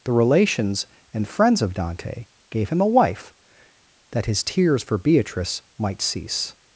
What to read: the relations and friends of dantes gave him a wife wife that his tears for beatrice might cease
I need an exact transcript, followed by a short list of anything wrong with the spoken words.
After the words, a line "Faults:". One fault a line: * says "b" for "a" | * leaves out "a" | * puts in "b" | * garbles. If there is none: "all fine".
the relations and friends of dante gave him a wife that his tears for beatrice might cease
Faults:
* says "dante" for "dantes"
* leaves out "wife"